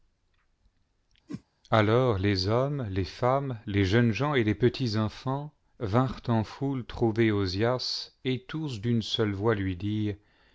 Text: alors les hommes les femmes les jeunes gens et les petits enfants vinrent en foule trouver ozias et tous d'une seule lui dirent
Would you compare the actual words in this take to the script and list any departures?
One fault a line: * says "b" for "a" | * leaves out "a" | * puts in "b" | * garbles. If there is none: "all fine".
* puts in "voix"